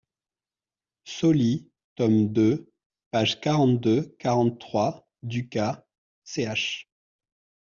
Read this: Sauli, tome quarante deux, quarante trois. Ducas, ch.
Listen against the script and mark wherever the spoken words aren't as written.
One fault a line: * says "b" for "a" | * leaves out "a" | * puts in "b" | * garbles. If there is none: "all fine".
* puts in "deux pages"